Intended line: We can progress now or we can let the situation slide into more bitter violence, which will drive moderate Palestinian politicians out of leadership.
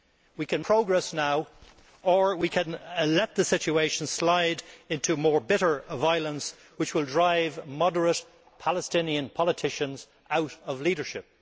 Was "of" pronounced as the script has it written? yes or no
yes